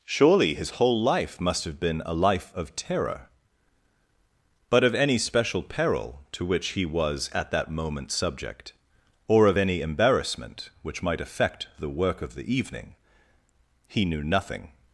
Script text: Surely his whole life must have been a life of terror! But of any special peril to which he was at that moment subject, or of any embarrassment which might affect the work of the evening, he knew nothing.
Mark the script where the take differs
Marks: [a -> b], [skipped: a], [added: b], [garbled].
Surely his whole life must have been a life of terror! But of any special peril to which he was at that moment subject, or of any embarrassment which might affect the work of the evening, he knew nothing.